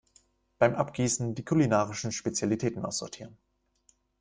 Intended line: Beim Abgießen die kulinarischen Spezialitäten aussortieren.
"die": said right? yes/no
yes